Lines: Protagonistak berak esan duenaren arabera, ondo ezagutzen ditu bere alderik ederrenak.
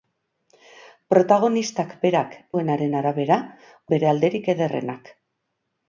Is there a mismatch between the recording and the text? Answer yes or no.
yes